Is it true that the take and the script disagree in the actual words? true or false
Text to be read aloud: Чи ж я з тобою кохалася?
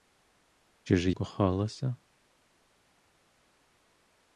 true